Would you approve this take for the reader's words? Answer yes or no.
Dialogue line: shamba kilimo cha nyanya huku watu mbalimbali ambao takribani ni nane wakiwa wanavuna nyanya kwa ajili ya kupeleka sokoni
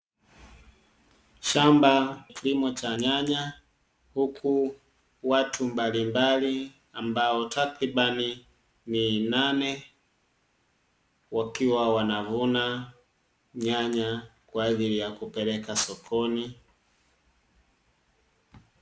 yes